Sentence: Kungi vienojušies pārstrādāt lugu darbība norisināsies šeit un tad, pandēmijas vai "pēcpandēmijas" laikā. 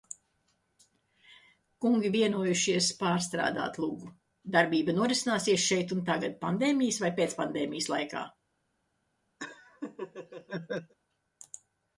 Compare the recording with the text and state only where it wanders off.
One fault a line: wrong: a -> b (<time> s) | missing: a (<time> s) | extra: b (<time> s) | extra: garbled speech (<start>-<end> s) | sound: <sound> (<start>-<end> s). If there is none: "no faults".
wrong: tad -> tagad (6.1 s)
sound: laugh (9.4-10.9 s)